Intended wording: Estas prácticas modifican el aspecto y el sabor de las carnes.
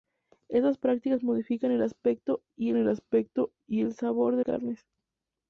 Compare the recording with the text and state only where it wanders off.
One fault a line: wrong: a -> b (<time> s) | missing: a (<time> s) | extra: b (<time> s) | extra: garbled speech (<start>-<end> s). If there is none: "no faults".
extra: aspecto y el (2.9 s)
missing: las (4.4 s)